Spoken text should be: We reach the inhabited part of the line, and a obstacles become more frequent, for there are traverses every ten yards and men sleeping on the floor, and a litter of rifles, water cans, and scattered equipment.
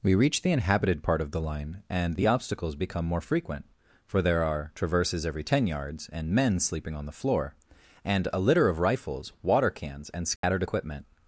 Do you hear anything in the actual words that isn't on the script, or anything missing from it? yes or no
yes